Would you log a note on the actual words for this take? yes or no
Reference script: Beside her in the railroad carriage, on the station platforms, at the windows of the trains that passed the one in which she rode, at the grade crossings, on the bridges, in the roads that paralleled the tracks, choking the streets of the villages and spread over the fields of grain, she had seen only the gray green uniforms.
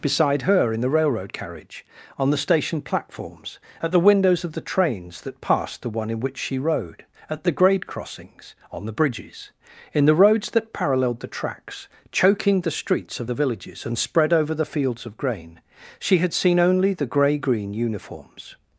no